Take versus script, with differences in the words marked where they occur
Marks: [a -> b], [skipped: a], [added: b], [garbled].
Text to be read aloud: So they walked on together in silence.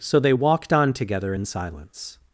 So they walked on together in silence.